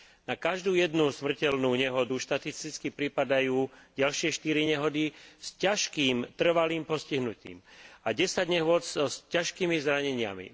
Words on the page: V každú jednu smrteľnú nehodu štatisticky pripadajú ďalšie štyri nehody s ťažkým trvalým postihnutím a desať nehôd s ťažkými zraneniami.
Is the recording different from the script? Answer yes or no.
yes